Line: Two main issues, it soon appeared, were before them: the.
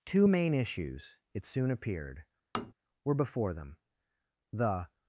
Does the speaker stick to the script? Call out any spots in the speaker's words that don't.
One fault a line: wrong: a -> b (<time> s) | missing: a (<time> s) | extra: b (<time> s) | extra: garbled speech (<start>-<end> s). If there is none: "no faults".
no faults